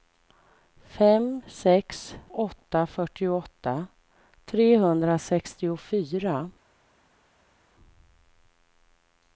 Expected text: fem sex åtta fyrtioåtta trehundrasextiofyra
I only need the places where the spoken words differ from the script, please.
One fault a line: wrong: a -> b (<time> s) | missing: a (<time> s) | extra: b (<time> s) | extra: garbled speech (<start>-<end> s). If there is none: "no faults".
no faults